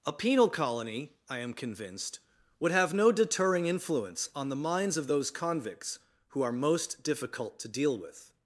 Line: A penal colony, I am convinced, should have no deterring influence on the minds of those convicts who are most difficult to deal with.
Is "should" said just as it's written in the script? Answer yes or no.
no